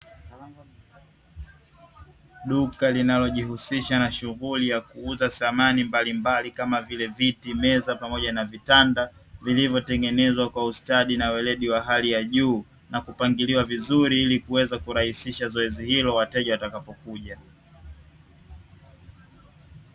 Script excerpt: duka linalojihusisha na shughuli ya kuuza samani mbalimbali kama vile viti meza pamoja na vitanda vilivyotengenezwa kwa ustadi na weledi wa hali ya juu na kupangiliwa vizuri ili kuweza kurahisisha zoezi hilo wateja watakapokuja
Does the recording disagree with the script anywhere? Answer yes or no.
no